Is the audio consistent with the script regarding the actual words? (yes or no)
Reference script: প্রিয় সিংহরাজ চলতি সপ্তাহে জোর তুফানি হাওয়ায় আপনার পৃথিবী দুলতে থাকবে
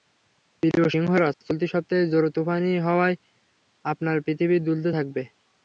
yes